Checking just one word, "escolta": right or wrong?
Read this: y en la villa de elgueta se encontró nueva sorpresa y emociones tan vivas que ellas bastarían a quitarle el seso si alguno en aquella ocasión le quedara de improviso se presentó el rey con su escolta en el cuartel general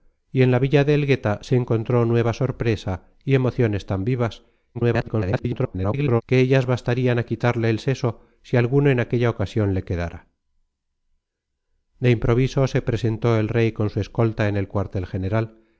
right